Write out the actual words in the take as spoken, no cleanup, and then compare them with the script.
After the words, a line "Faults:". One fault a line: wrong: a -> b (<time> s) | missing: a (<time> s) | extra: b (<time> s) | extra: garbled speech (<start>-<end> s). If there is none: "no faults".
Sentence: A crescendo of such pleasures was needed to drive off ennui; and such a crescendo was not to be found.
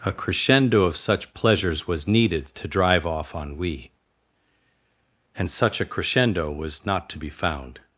A crescendo of such pleasures was needed to drive off ennui; and such a crescendo was not to be found.
Faults:
no faults